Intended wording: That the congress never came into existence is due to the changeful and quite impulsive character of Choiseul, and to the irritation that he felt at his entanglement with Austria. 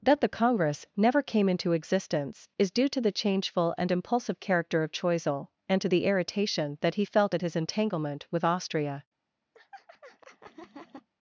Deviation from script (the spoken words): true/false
true